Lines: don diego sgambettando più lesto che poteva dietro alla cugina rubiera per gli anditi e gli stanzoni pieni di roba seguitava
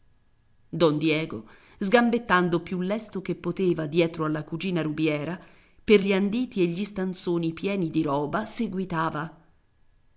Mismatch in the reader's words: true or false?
false